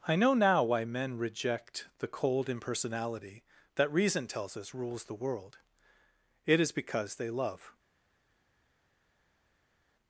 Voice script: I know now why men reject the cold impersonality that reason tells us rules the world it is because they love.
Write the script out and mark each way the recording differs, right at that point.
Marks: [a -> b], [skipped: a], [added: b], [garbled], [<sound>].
I know now why men reject the cold impersonality that reason tells us rules the world it is because they love.